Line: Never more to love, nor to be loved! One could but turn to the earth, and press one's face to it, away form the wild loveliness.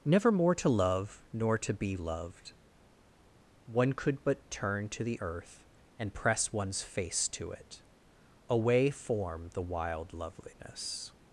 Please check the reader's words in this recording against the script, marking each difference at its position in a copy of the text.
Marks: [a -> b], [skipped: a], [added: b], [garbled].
Never more to love, nor to be loved! One could but turn to the earth, and press one's face to it, away form the wild loveliness.